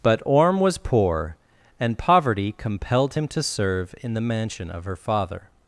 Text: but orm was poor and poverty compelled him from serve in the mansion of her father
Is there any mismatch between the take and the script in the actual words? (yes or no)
yes